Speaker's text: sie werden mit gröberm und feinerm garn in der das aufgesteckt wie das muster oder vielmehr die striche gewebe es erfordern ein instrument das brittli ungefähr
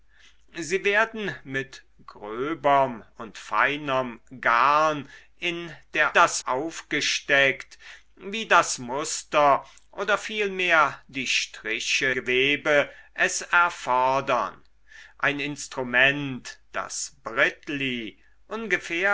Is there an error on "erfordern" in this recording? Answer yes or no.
no